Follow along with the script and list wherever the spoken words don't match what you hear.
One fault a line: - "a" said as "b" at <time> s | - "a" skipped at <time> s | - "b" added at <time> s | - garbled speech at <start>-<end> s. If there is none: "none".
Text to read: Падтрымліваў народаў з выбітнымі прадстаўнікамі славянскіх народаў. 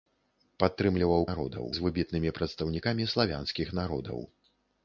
none